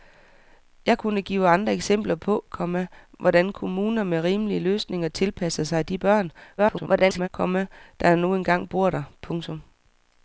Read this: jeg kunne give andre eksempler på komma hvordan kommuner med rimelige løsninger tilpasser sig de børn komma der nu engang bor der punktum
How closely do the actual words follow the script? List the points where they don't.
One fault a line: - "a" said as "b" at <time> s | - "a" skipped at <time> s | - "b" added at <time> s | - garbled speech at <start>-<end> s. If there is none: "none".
- garbled speech at 6.6-7.3 s